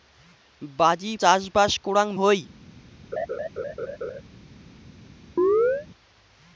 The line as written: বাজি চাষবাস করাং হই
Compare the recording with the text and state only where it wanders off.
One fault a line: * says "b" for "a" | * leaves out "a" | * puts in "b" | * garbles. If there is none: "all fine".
all fine